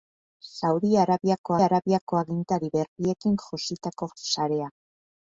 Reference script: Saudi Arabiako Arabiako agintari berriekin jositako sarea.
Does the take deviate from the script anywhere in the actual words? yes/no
no